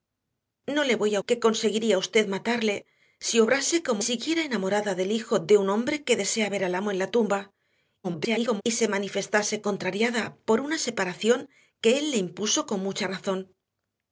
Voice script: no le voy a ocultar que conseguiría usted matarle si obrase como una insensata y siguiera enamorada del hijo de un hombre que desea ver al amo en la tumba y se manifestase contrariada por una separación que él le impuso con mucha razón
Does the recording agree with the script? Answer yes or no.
no